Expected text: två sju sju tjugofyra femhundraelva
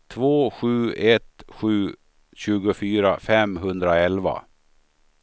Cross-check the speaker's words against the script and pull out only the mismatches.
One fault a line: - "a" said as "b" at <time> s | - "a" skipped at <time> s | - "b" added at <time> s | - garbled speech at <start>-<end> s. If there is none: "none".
- "ett" added at 0.9 s